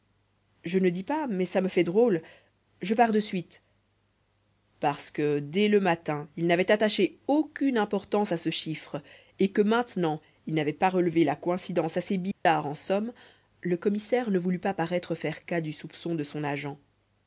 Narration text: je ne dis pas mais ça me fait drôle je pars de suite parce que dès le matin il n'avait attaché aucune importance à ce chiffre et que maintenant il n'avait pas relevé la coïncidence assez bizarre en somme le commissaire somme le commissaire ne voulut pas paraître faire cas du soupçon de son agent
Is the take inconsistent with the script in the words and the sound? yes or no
yes